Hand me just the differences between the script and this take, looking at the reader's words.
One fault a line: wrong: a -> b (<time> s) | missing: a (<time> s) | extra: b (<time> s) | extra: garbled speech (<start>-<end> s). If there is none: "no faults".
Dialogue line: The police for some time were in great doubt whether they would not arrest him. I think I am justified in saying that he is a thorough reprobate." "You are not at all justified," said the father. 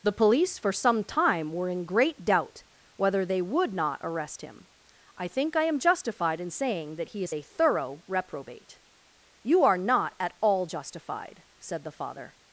no faults